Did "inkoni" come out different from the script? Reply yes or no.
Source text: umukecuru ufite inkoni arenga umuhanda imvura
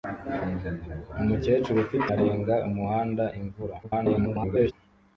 yes